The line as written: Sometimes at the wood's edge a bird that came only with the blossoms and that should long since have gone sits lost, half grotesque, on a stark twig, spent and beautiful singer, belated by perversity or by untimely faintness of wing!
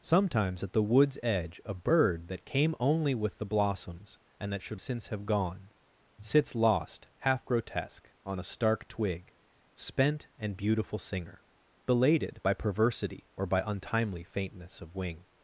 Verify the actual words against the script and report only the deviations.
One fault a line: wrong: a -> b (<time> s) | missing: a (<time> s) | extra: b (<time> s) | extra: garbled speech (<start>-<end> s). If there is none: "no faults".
missing: long (4.8 s)